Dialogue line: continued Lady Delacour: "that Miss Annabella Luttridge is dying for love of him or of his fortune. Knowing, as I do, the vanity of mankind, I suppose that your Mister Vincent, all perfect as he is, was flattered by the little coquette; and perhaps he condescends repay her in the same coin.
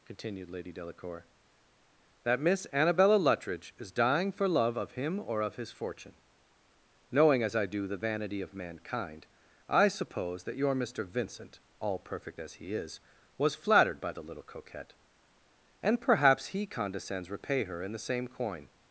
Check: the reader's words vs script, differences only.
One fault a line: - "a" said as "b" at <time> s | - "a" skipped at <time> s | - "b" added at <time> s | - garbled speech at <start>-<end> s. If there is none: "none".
none